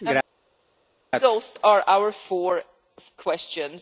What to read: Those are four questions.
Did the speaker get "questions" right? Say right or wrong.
right